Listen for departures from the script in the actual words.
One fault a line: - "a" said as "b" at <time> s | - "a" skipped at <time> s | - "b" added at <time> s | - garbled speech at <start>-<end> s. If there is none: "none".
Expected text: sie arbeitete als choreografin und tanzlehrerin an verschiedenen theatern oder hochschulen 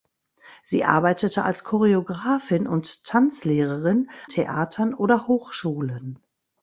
- "an verschiedenen" skipped at 4.1 s